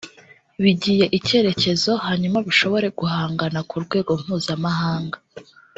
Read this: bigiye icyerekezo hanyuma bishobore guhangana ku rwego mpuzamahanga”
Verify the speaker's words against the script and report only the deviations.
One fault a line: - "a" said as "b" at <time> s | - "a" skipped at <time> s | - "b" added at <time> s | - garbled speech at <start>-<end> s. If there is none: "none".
none